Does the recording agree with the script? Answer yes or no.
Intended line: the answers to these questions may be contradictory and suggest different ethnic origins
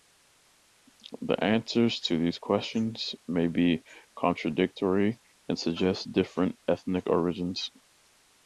yes